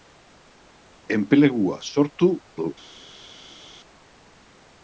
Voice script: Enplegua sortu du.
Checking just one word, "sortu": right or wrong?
right